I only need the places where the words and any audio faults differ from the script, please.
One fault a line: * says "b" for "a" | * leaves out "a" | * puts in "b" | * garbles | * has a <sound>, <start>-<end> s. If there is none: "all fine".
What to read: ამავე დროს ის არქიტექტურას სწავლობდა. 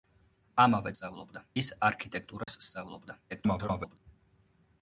* says "სწავლობდა" for "დროს"
* has a dropout, 2.4-2.5 s
* garbles